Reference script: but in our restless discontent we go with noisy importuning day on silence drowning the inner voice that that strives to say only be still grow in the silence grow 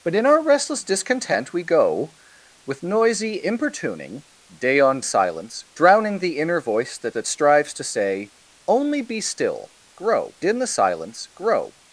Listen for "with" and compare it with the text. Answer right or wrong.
right